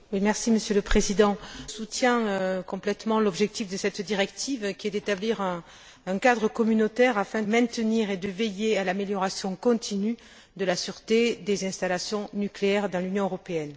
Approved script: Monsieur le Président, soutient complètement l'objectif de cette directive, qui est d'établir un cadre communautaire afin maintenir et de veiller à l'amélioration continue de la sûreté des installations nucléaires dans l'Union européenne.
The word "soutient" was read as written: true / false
true